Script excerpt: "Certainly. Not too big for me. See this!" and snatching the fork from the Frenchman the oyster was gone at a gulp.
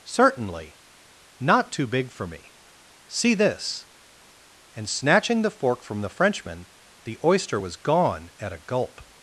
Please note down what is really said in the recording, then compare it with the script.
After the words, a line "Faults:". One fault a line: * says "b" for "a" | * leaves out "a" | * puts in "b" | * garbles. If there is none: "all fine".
"Certainly. Not too big for me. See this!" and snatching the fork from the Frenchman the oyster was gone at a gulp.
Faults:
all fine